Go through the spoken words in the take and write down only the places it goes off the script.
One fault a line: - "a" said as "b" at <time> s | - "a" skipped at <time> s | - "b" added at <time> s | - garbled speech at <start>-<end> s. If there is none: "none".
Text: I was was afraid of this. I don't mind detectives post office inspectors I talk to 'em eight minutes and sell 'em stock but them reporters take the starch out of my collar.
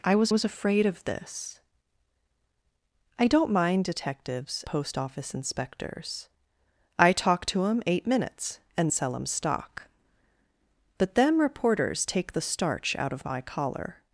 none